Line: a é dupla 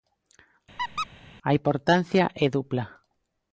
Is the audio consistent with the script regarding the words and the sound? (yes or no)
no